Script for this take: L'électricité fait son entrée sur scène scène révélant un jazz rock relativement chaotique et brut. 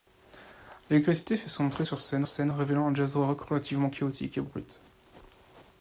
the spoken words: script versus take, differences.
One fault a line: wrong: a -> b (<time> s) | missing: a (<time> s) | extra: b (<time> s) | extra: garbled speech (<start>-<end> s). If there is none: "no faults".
no faults